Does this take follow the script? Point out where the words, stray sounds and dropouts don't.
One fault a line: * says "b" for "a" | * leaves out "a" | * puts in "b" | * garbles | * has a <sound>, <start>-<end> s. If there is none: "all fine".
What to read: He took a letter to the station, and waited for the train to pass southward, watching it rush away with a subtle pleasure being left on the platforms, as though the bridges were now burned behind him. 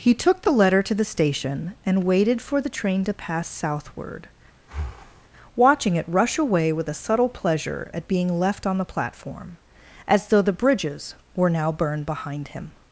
* says "the" for "a"
* has a breath, 4.6-5.3 s
* puts in "at"
* says "platform" for "platforms"